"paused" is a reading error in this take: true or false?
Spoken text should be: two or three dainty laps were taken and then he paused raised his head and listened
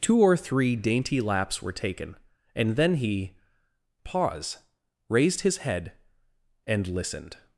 true